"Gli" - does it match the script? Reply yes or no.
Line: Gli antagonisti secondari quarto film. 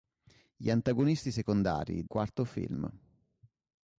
yes